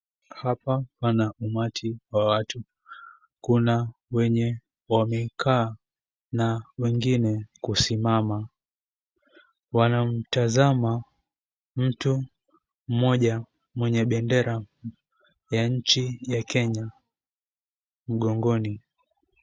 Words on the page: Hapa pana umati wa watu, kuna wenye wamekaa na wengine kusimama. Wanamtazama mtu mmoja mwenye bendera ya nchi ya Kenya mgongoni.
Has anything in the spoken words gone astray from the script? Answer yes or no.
no